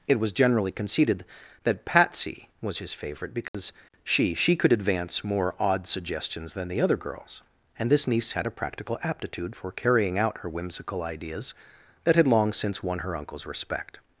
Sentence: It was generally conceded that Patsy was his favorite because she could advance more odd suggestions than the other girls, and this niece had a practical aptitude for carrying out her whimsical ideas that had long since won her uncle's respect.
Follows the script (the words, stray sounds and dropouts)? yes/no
no